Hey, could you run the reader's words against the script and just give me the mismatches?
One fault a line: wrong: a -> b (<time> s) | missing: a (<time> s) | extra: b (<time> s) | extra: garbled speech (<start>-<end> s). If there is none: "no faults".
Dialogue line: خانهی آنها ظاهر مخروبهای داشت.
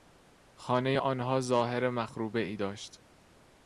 no faults